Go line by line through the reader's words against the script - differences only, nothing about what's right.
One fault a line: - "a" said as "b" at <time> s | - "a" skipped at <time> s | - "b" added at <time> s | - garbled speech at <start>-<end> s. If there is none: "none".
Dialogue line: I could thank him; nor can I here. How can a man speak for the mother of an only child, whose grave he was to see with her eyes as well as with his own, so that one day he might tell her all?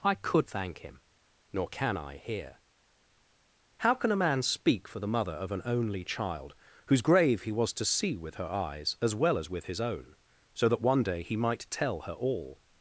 none